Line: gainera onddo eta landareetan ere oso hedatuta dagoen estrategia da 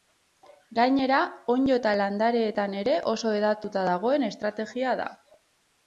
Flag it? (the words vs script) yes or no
no